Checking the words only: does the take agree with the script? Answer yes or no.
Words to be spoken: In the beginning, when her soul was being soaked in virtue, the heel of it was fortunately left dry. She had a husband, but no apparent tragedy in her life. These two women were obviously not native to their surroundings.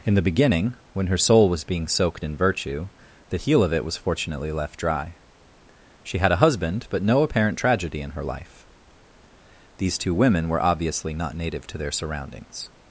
yes